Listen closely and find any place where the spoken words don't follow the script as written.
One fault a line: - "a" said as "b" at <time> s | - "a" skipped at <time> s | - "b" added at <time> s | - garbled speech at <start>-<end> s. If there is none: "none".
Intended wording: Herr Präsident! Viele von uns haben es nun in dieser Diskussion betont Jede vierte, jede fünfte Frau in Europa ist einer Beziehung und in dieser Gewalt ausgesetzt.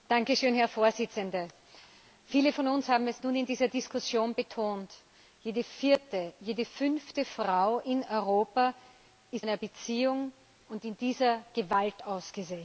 none